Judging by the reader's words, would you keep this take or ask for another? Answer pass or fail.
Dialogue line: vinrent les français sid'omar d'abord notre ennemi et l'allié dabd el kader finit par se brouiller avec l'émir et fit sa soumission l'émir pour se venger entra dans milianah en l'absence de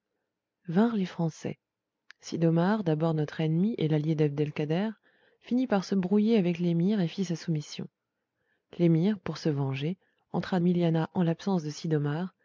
fail